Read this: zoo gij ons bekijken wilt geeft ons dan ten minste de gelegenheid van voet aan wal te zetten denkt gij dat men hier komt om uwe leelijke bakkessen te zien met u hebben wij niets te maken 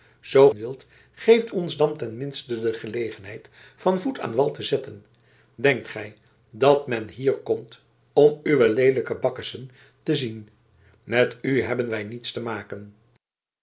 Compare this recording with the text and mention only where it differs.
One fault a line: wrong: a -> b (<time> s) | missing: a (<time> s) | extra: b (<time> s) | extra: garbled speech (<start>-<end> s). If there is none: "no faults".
missing: gij ons bekijken (0.5 s)